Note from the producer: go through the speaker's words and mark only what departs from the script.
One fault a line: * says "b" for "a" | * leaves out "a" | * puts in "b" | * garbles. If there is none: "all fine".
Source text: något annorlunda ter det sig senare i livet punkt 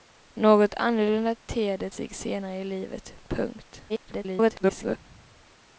* garbles